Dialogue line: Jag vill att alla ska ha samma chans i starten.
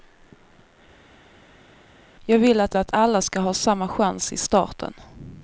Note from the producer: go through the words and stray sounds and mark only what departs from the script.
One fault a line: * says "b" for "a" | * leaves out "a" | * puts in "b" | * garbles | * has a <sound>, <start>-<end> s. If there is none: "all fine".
* puts in "att"